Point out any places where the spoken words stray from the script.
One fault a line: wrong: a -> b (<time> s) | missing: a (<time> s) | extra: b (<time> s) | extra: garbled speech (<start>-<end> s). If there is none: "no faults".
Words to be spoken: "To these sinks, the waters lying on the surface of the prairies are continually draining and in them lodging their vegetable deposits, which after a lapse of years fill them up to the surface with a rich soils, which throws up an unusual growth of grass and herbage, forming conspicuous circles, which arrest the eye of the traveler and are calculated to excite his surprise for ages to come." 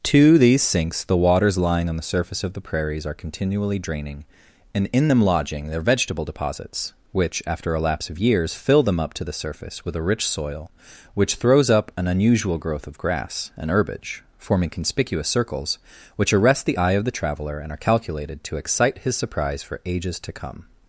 wrong: soils -> soil (10.3 s)